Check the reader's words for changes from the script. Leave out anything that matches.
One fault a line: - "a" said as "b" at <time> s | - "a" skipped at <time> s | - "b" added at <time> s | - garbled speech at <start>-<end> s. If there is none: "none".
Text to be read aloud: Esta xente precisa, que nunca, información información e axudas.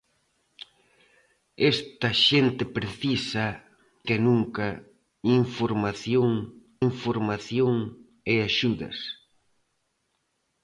none